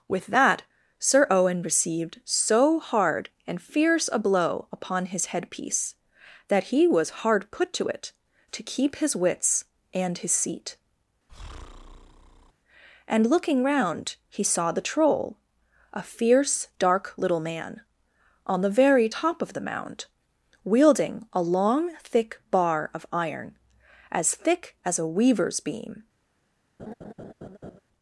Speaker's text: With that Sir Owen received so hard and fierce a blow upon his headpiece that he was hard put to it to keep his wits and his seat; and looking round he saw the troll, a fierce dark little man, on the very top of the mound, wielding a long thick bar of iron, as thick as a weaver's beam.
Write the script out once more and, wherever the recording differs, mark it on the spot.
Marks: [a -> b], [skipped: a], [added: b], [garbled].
With that Sir Owen received so hard and fierce a blow upon his headpiece that he was hard put to it to keep his wits and his seat; and looking round he saw the troll, a fierce dark little man, on the very top of the mound, wielding a long thick bar of iron, as thick as a weaver's beam.